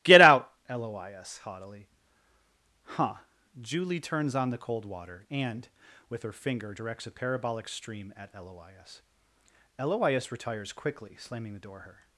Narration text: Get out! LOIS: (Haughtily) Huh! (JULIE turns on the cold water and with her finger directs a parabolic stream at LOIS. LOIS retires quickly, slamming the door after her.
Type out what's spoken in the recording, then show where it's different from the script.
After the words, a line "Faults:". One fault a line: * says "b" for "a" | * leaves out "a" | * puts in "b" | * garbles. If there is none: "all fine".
Get out! LOIS: (Haughtily) Huh! (JULIE turns on the cold water and with her finger directs a parabolic stream at LOIS. LOIS retires quickly, slamming the door her.
Faults:
* leaves out "after"